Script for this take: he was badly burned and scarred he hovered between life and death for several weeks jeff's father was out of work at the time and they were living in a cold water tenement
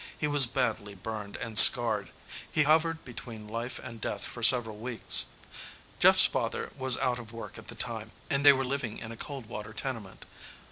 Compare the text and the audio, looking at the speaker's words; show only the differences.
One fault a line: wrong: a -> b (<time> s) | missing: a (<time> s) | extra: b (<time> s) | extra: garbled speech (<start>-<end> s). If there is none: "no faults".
no faults